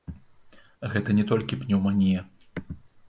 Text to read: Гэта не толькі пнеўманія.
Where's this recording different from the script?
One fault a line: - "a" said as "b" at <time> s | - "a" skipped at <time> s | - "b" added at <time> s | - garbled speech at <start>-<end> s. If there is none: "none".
none